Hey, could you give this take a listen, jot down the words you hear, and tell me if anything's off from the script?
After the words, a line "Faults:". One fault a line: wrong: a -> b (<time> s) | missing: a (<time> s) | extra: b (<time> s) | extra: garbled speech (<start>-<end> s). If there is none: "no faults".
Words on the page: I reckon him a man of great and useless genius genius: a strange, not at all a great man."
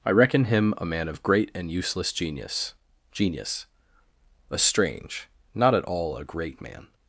I reckon him a man of great and useless genius genius: a strange, not at all a great man."
Faults:
no faults